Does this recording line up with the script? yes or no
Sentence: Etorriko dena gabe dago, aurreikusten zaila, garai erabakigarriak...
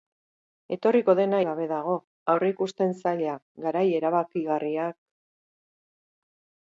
yes